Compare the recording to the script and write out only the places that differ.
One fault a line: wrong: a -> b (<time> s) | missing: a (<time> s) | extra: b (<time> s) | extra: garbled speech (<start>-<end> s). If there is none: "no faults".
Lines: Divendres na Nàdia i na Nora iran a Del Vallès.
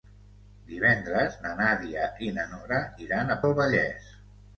no faults